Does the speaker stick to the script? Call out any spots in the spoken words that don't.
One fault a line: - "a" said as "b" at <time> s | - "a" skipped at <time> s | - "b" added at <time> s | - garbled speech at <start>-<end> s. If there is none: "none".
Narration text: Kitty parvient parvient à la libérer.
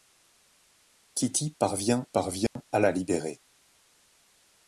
none